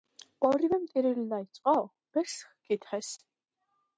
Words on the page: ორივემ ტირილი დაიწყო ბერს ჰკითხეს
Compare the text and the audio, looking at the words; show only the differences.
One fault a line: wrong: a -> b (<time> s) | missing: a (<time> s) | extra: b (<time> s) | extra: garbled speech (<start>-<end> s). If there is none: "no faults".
no faults